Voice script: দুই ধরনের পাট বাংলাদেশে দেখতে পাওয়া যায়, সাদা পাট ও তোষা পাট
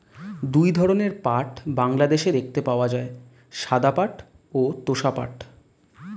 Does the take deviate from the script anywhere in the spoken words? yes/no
no